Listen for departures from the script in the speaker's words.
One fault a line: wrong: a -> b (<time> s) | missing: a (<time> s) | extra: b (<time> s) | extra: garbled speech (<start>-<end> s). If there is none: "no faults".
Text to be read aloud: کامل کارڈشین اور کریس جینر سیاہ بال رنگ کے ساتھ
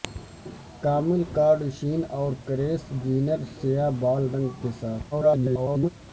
extra: garbled speech (5.1-5.9 s)